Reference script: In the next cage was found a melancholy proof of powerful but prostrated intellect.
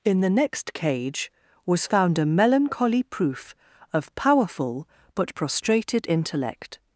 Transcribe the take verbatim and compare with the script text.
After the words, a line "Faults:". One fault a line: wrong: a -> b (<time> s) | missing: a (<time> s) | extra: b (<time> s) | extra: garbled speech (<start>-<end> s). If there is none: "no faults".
In the next cage was found a melancholy proof of powerful but prostrated intellect.
Faults:
no faults